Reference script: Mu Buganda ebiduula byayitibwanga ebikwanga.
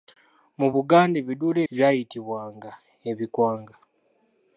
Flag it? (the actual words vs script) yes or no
no